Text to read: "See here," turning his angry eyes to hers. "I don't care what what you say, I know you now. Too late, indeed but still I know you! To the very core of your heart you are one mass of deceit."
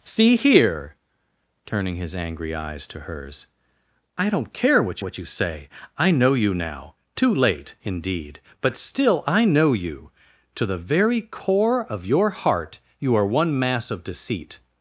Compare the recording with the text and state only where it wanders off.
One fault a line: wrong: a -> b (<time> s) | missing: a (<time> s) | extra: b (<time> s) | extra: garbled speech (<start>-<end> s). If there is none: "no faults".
no faults